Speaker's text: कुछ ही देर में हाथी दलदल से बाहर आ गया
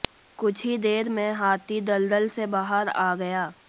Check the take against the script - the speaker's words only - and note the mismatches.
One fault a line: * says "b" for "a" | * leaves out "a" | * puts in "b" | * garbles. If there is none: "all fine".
all fine